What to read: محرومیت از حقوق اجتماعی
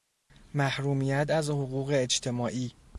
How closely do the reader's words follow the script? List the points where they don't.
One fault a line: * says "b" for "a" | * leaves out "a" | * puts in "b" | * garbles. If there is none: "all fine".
all fine